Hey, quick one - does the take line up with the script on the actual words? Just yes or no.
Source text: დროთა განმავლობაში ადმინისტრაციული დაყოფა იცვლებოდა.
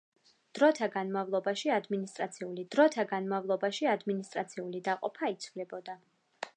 no